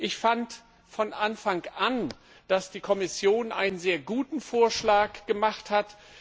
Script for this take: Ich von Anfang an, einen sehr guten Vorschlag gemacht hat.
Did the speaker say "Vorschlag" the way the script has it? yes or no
yes